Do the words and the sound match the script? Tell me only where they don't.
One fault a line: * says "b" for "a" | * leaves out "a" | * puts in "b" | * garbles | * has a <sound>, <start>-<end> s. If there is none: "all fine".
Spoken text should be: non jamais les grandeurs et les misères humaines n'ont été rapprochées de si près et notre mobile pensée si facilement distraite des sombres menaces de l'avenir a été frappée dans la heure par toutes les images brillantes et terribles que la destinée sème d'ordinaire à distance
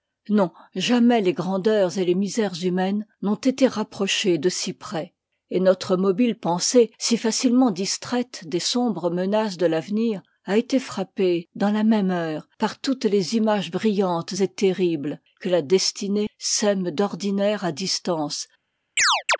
* puts in "même"
* has a chirp, 19.0-19.4 s